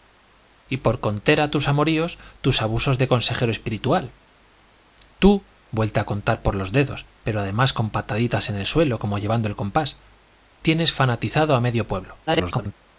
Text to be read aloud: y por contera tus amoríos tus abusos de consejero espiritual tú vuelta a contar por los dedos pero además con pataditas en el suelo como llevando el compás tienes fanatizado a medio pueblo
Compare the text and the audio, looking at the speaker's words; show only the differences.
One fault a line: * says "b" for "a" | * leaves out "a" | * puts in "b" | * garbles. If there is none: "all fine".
* garbles